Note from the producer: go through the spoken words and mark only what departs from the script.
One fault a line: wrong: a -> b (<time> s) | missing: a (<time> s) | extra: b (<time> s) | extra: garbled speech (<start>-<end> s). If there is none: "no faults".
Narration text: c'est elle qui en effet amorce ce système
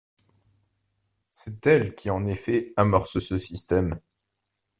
no faults